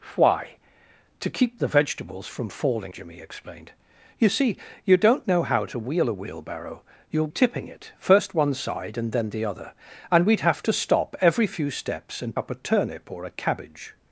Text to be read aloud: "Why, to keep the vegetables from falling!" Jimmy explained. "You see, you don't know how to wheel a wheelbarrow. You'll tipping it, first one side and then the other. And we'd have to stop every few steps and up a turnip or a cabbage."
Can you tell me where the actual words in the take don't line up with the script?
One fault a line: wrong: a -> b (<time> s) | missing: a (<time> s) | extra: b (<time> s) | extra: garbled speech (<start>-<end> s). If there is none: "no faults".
no faults